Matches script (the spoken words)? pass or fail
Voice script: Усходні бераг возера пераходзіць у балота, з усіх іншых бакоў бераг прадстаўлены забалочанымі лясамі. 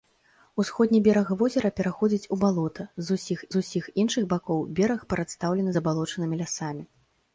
fail